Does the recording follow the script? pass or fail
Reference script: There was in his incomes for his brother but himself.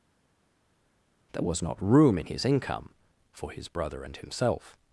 fail